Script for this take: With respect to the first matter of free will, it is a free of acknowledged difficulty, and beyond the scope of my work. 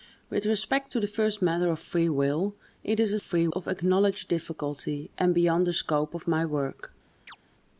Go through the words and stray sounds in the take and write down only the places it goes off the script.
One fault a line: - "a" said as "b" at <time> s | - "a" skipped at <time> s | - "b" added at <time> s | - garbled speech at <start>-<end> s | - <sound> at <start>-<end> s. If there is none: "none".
- chirp at 7.3-7.4 s